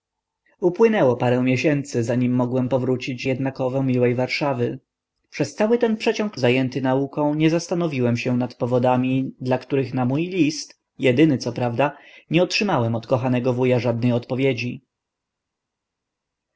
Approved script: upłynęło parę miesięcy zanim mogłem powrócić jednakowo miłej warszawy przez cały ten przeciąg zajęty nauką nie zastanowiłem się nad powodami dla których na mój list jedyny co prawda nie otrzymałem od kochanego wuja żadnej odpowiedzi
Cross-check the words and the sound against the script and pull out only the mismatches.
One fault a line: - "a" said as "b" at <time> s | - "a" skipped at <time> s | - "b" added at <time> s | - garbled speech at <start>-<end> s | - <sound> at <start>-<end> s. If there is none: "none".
none